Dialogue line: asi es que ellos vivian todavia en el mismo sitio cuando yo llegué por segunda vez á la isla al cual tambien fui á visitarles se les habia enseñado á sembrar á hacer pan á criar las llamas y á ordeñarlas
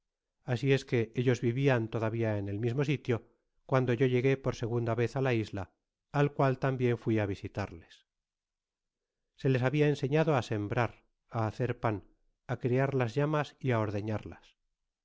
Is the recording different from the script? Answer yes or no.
no